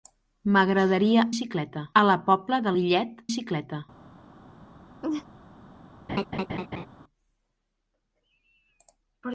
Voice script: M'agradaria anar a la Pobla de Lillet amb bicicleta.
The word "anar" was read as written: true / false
false